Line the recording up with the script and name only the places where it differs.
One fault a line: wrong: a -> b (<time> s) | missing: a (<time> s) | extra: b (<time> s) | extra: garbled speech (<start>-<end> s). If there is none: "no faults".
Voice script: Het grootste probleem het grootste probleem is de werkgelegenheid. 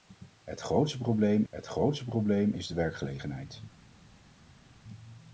no faults